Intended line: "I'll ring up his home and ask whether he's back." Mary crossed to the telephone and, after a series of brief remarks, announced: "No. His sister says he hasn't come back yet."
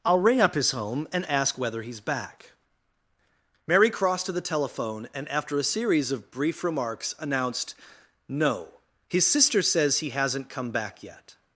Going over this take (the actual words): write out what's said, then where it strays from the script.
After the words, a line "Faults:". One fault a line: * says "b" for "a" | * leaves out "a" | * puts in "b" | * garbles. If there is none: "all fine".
"I'll ring up his home and ask whether he's back." Mary crossed to the telephone and, after a series of brief remarks, announced: "No. His sister says he hasn't come back yet."
Faults:
all fine